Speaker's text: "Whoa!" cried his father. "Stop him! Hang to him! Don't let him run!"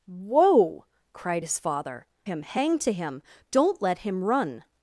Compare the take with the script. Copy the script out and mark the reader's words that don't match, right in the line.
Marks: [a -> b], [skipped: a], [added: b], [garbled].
"Whoa!" cried his father. [skipped: "Stop] him! Hang to him! Don't let him run!"